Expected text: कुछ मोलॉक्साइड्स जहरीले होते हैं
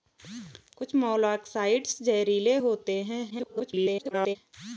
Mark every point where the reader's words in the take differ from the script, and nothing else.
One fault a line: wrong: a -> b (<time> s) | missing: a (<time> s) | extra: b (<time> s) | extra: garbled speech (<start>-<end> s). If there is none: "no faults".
extra: garbled speech (3.3-4.4 s)